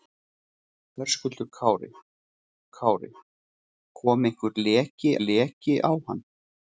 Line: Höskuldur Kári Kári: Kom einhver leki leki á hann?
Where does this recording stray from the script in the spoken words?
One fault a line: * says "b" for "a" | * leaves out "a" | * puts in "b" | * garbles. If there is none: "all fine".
all fine